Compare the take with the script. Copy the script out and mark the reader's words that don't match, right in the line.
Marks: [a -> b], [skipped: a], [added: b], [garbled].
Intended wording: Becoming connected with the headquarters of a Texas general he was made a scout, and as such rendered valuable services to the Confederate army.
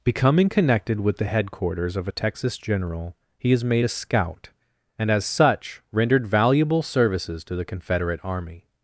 Becoming connected with the headquarters of a Texas general he [was -> is] made a scout, and as such rendered valuable services to the Confederate army.